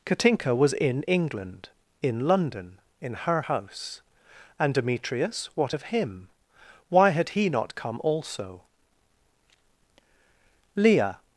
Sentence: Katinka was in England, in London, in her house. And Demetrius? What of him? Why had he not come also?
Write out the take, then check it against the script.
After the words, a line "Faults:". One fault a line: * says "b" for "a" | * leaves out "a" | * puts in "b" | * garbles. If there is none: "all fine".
Katinka was in England, in London, in her house. And Demetrius? What of him? Why had he not come also? Leah
Faults:
* puts in "Leah"